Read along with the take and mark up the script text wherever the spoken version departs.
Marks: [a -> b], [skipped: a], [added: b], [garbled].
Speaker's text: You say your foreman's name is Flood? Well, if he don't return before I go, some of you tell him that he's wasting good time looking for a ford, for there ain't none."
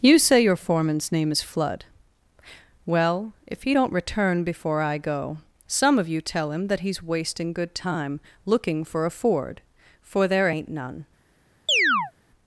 You say your foreman's name is Flood? Well, if he don't return before I go, some of you tell him that he's wasting good time looking for a ford, for there ain't none."